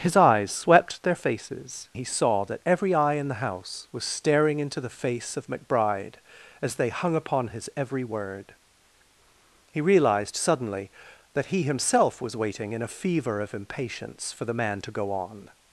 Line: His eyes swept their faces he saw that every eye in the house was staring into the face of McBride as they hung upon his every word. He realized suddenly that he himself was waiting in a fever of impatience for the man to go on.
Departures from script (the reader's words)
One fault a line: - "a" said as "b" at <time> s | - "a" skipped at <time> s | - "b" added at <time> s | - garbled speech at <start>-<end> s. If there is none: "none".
none